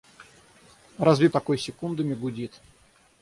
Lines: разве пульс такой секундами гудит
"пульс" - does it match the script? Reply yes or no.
no